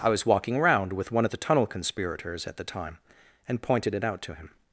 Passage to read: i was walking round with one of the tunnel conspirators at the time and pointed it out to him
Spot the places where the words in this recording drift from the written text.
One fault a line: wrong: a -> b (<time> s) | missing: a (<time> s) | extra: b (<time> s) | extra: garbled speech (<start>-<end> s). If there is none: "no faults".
wrong: round -> around (0.6 s)